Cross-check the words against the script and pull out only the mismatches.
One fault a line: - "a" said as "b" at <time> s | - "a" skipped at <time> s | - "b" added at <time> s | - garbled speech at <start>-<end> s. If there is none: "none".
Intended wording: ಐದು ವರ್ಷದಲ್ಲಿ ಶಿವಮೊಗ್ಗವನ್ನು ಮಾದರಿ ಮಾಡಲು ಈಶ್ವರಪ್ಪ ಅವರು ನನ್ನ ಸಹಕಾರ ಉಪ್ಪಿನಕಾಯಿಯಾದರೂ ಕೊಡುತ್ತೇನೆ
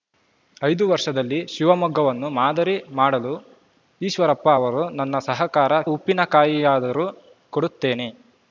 none